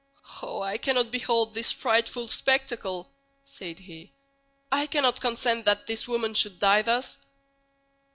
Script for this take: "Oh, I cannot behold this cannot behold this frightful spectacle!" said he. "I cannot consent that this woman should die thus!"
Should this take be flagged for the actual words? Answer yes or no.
yes